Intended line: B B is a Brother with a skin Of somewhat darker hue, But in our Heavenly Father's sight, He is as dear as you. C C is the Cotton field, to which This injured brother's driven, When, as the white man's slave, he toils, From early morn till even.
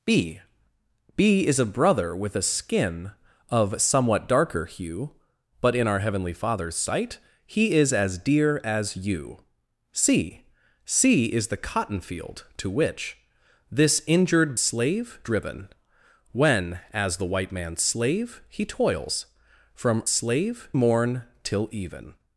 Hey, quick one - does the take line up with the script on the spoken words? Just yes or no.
no